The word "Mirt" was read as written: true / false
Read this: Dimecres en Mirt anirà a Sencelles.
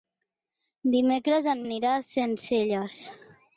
false